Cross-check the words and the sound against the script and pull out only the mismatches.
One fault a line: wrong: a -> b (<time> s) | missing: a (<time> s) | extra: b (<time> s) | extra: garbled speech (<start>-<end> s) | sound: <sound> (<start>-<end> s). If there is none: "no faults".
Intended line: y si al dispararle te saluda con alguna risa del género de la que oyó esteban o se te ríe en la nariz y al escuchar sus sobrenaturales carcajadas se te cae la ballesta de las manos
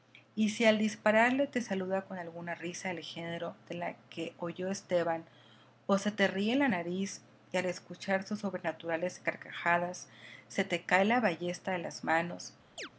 sound: chirp (12.8-12.9 s)